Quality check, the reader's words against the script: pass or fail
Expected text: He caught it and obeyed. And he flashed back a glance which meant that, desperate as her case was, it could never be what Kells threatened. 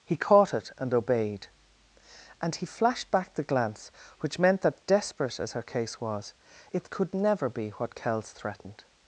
fail